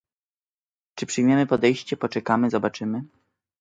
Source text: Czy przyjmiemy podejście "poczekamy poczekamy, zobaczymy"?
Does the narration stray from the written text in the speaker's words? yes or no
yes